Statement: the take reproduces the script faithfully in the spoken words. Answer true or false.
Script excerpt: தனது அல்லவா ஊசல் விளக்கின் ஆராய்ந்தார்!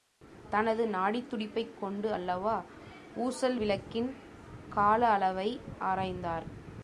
false